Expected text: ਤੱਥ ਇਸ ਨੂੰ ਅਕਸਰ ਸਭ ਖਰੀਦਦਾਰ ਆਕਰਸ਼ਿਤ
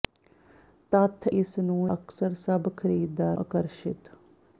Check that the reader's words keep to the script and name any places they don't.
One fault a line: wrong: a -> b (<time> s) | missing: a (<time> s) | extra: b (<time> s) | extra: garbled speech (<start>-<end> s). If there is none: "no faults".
no faults